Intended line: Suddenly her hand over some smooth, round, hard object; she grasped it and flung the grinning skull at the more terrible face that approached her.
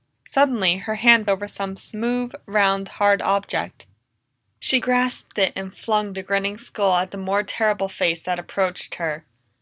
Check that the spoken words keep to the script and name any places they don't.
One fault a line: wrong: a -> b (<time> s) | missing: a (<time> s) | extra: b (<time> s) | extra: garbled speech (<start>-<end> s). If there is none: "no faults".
no faults